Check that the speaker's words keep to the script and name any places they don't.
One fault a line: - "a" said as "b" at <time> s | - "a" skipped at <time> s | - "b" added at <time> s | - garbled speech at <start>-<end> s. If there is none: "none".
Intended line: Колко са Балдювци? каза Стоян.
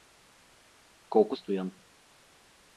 - "са Балдювци каза" skipped at 1.4 s